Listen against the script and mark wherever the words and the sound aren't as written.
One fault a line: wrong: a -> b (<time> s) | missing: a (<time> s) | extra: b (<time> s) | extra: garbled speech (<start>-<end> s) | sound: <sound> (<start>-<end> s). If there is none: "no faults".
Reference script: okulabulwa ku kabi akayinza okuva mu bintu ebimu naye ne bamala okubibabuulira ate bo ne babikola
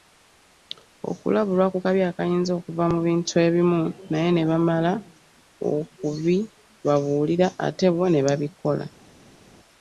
no faults